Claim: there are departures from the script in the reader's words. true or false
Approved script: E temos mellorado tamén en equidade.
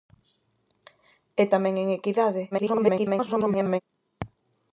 true